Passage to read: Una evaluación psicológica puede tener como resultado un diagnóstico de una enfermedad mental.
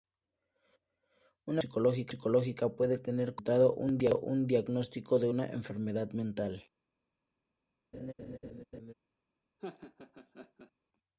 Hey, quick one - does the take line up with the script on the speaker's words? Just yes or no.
yes